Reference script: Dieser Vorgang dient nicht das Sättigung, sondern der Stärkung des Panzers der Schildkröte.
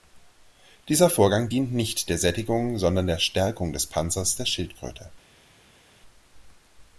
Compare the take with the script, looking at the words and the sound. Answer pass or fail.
fail